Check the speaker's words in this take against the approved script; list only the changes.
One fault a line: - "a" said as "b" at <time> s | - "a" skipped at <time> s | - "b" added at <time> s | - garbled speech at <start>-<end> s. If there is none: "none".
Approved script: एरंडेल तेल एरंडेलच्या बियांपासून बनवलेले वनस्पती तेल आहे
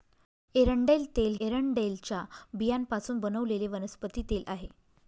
none